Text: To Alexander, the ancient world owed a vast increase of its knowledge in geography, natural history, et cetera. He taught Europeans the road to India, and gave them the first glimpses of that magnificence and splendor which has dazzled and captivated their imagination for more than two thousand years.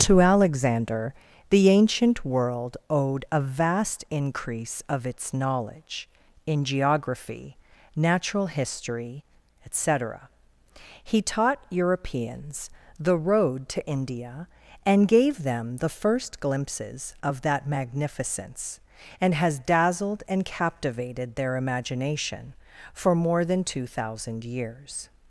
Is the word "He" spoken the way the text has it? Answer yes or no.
yes